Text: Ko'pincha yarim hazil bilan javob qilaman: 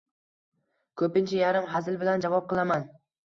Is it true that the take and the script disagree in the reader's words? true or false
false